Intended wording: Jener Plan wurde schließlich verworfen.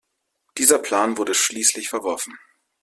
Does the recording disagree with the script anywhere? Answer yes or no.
yes